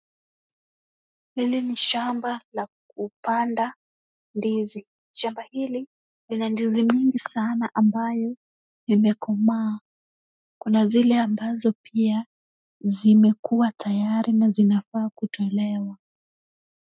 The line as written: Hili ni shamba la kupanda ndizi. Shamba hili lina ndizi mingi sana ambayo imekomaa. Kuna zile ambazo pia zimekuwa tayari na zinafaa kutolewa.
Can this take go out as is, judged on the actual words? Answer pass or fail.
pass